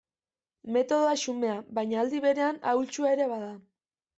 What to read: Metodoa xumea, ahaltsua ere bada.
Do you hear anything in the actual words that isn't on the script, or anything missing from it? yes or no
yes